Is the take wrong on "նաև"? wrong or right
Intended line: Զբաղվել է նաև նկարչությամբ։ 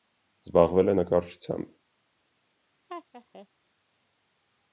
wrong